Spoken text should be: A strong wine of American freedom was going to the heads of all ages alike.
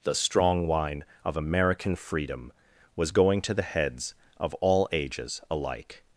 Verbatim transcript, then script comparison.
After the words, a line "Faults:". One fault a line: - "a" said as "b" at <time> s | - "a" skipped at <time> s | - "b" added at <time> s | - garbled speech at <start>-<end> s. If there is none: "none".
The strong wine of American freedom was going to the heads of all ages alike.
Faults:
- "A" said as "The" at 0.0 s